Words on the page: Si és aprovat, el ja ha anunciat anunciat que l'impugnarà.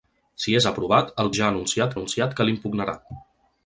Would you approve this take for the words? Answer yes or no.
yes